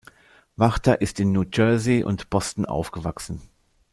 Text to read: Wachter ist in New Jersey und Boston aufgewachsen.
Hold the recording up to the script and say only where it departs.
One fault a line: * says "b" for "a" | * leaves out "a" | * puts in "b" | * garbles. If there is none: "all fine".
all fine